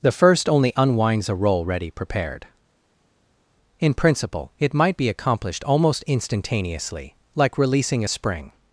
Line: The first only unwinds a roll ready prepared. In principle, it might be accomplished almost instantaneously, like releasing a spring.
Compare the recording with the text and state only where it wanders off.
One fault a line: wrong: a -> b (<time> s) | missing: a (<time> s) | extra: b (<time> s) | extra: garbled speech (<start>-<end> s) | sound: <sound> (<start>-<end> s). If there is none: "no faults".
no faults